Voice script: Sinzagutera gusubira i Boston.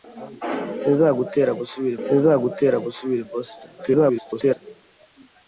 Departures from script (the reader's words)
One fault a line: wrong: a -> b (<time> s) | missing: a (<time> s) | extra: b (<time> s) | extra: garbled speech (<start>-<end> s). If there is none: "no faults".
extra: sinzagutera gusubira (2.1 s)
extra: garbled speech (3.8-4.6 s)